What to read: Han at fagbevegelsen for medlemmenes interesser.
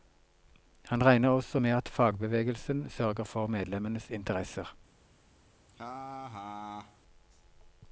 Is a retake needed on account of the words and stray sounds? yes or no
yes